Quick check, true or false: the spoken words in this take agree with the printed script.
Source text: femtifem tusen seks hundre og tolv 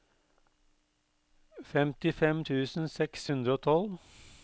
true